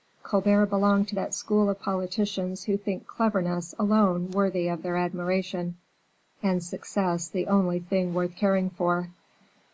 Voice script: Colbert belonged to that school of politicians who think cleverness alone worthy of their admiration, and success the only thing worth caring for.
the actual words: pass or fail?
pass